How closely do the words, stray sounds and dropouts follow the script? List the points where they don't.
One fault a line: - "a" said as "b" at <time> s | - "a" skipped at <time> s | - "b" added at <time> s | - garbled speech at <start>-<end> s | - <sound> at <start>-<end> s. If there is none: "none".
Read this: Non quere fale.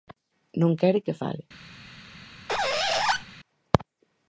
- "que" added at 1.1 s
- squeak at 2.5-3.2 s